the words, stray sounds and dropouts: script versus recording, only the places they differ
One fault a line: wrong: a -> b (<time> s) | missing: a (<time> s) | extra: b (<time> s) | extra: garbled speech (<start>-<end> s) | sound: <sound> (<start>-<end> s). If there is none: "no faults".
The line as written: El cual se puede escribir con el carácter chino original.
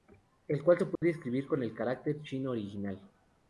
sound: dropout (1.0-1.0 s)